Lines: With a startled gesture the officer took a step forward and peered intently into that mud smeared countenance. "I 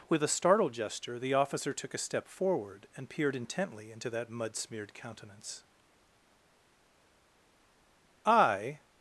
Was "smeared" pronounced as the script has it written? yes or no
yes